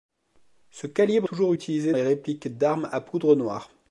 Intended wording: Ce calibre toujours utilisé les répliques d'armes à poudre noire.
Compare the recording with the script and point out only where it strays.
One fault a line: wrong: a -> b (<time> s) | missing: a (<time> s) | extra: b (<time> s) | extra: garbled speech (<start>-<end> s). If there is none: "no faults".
no faults